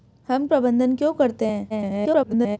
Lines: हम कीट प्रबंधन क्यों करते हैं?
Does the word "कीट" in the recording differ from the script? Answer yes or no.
yes